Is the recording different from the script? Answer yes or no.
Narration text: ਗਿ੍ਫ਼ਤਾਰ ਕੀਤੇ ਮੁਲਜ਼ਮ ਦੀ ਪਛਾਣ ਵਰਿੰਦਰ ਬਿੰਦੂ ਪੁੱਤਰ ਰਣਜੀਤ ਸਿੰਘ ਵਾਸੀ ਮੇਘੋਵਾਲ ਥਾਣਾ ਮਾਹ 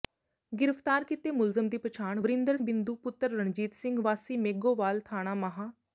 no